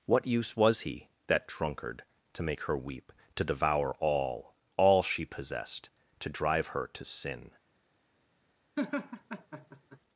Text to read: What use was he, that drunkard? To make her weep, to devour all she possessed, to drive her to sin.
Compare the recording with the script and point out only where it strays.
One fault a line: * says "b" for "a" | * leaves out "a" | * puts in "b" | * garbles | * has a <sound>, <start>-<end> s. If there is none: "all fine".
* puts in "all"
* has a laugh, 8.8-10.0 s